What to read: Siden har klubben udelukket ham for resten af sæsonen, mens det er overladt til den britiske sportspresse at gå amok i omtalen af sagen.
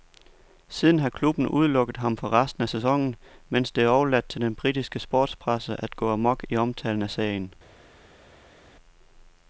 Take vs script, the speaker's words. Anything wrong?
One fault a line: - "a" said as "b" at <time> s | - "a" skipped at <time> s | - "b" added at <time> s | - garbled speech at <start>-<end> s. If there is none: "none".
none